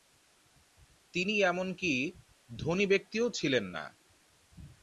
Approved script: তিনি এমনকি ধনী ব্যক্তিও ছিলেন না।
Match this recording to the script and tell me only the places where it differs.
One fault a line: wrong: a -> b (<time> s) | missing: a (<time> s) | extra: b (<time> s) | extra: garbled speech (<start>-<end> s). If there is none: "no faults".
no faults